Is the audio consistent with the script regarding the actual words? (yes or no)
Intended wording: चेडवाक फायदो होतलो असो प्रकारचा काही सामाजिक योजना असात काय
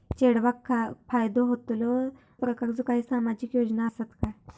no